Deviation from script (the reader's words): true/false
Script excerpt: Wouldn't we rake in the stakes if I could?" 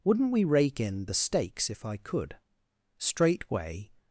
true